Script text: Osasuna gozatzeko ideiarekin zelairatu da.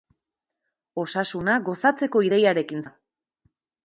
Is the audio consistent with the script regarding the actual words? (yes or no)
no